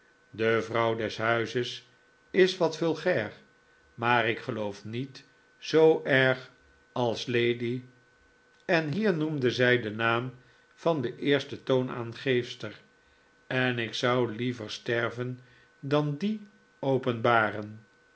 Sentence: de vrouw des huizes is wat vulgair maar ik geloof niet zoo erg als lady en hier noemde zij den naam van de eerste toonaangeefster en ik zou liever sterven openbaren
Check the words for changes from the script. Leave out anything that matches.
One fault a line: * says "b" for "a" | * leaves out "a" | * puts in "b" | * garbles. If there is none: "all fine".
* puts in "dan dien"